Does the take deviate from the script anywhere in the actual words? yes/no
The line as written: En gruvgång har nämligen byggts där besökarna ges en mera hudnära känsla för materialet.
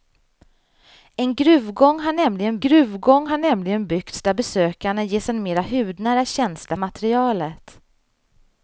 yes